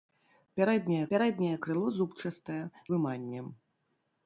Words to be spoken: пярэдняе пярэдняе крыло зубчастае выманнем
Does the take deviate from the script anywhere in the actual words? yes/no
no